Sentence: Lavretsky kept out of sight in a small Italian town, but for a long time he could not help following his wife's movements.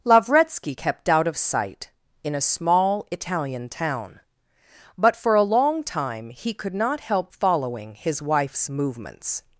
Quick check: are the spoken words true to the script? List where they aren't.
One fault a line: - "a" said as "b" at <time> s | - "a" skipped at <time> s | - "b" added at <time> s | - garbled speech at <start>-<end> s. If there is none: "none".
none